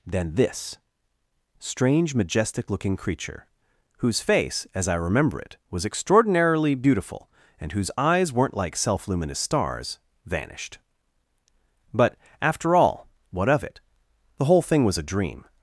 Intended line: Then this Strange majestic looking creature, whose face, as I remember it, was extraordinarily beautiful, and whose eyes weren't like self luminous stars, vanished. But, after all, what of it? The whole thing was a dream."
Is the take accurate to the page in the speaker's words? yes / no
yes